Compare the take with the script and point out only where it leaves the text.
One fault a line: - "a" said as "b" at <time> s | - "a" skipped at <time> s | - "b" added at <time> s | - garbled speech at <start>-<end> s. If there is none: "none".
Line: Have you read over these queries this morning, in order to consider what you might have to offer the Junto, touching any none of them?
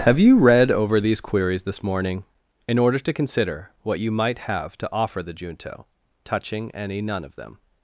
none